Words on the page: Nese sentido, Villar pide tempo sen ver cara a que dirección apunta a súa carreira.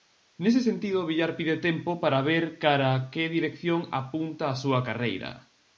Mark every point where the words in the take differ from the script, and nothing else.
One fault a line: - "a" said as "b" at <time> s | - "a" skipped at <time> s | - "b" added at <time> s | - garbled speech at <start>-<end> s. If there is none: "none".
- "sen" said as "para" at 2.0 s